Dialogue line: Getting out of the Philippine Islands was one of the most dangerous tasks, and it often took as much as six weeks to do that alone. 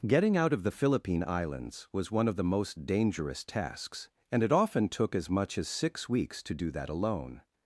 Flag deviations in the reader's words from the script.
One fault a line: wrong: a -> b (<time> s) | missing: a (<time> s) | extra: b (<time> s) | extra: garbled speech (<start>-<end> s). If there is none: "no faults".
no faults